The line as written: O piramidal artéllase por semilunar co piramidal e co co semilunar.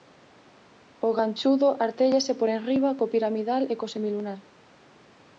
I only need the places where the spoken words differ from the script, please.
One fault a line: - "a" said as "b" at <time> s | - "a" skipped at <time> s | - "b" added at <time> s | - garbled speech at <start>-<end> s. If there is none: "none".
- "piramidal" said as "ganchudo" at 1.2 s
- "semilunar" said as "enriba" at 2.6 s
- "co" skipped at 3.9 s